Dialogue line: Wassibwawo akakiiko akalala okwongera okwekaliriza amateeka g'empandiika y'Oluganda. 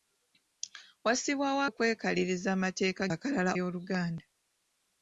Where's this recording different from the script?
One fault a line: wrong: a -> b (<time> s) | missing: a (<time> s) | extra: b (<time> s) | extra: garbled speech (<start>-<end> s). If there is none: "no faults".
missing: akakiiko akalala okwongera (1.6 s)
wrong: g'empandiika -> akalala (3.1 s)